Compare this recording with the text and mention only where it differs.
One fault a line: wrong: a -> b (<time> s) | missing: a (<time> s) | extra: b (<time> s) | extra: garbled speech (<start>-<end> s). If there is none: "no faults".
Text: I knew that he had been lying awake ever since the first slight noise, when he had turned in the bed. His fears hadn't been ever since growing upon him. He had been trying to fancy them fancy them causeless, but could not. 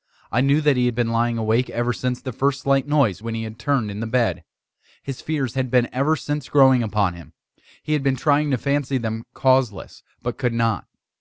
wrong: hadn't -> had (5.5 s)
missing: fancy them (9.2 s)